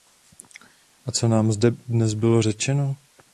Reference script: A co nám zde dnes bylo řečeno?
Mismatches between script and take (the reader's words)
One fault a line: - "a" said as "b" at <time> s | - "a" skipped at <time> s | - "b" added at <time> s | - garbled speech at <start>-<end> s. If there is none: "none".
none